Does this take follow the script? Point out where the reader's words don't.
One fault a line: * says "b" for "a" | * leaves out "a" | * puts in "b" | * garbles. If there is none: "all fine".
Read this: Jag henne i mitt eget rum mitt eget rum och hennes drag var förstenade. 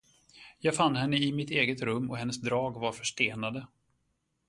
* puts in "fann"
* leaves out "mitt eget rum"